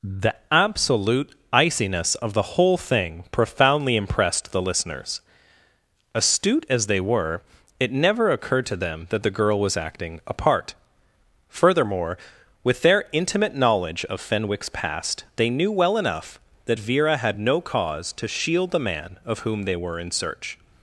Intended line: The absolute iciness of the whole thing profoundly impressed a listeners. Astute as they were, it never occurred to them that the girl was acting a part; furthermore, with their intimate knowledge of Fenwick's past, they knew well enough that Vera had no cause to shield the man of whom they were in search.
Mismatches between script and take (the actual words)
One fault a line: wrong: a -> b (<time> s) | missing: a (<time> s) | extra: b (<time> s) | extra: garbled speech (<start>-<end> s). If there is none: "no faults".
wrong: a -> the (4.5 s)